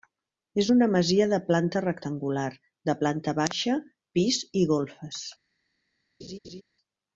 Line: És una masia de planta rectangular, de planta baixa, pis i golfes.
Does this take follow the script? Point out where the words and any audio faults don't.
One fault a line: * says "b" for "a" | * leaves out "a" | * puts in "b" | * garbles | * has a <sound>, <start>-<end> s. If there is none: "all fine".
* has a laugh, 6.2-6.6 s